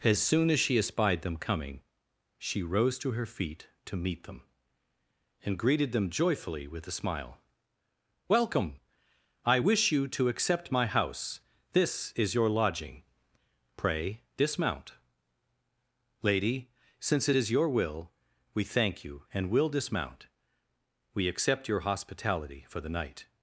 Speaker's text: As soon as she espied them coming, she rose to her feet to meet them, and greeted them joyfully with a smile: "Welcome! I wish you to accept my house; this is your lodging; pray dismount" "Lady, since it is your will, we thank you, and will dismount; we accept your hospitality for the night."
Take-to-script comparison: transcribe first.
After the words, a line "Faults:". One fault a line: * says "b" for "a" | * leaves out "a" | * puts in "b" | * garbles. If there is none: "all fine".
As soon as she espied them coming, she rose to her feet to meet them, and greeted them joyfully with a smile: "Welcome! I wish you to accept my house; this is your lodging; pray dismount" "Lady, since it is your will, we thank you, and will dismount; we accept your hospitality for the night."
Faults:
all fine